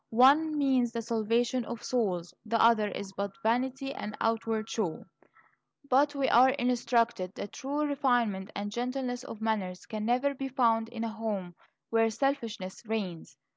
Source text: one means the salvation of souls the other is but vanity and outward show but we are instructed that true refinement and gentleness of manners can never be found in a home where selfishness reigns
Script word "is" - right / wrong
right